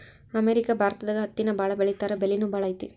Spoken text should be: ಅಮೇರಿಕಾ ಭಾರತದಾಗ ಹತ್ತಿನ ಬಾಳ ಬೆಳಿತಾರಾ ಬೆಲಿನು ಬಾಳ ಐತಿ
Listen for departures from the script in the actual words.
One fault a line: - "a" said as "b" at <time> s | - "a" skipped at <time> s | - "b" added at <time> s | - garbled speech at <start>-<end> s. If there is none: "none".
none